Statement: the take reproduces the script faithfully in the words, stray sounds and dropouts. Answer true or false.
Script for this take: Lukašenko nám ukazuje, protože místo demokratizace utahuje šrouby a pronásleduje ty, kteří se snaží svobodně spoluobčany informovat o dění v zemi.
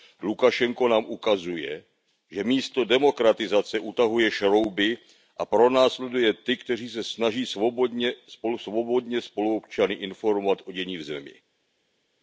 false